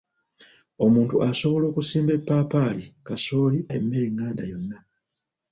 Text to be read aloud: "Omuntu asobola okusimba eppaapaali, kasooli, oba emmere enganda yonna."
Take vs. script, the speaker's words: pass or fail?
fail